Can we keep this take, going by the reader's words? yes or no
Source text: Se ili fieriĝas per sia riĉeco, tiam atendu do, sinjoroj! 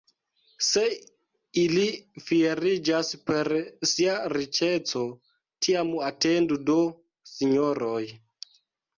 yes